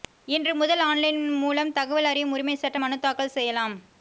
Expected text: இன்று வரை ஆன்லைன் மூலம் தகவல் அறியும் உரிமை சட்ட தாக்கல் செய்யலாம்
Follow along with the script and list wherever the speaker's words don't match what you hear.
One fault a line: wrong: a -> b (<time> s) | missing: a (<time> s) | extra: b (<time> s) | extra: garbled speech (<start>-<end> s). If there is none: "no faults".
wrong: வரை -> முதல் (0.6 s)
extra: மனு (2.8 s)